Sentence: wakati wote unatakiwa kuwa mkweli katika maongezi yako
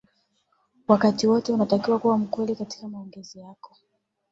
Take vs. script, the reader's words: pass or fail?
pass